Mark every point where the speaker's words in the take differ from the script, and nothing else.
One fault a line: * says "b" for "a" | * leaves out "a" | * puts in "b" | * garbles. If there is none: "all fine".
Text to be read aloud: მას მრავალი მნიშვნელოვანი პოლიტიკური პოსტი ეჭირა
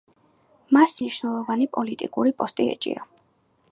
* leaves out "მრავალი"